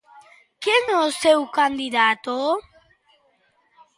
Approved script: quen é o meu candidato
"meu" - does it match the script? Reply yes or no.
no